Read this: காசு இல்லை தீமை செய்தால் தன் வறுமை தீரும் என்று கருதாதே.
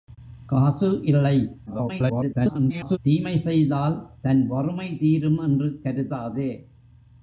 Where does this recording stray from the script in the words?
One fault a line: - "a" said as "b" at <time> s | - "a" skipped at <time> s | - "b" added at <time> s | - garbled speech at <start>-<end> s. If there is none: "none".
- garbled speech at 1.7-3.0 s